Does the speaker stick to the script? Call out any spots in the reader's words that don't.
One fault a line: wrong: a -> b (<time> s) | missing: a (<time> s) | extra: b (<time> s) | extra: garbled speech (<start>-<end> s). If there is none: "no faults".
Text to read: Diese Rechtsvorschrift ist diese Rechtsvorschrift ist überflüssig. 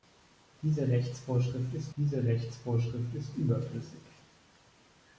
no faults